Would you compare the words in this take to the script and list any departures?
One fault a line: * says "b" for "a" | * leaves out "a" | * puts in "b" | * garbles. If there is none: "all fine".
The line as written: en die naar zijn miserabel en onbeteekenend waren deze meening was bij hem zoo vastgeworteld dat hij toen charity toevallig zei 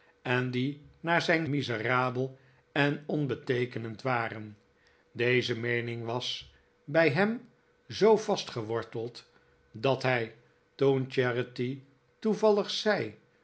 all fine